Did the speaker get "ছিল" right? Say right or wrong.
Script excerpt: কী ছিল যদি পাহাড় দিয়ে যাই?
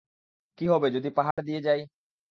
wrong